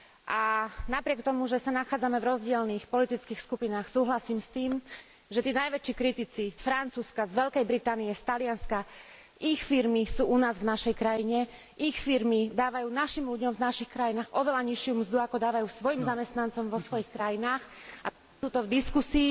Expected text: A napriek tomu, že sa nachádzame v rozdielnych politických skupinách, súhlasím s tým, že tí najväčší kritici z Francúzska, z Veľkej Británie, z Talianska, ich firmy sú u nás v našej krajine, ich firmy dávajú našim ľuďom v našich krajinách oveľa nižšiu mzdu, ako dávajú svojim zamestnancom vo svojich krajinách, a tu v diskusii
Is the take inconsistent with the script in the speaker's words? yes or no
yes